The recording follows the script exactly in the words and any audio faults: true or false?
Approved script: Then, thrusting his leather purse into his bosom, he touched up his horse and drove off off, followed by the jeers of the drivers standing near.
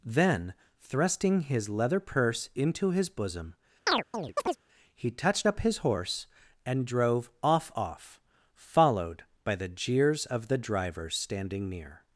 false